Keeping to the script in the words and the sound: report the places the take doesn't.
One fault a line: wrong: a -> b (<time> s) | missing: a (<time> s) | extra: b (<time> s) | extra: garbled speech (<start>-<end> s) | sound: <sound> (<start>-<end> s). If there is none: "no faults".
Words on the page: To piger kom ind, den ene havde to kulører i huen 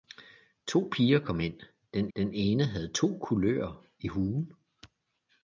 extra: den (2.2 s)